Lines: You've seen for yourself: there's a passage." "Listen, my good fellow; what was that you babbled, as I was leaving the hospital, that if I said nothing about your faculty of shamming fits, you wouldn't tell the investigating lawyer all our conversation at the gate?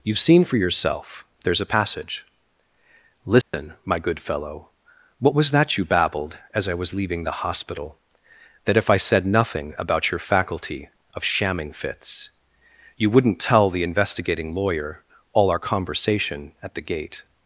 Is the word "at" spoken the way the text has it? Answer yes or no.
yes